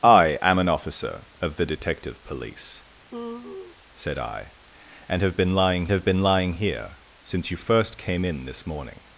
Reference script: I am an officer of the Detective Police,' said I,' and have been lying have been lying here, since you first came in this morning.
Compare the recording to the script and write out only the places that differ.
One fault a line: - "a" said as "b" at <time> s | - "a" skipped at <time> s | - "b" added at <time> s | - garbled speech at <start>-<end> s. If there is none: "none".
none